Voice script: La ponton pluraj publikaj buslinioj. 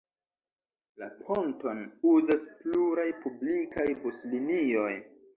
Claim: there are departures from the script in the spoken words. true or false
true